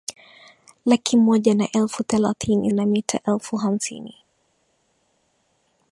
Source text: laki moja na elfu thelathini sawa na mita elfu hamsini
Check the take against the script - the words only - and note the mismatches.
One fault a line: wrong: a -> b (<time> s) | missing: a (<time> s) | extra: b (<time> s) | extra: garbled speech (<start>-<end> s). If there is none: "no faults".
missing: sawa (2.7 s)